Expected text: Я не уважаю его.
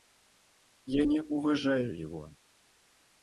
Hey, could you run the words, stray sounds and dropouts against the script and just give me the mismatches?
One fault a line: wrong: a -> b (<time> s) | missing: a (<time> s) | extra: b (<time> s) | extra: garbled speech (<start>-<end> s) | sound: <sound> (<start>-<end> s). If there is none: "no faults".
no faults